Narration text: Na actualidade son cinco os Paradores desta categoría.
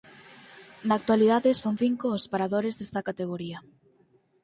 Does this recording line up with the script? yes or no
yes